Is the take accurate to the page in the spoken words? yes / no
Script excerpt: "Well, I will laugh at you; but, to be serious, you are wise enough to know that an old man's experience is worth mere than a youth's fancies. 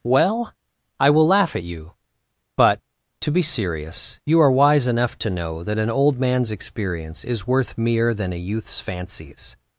yes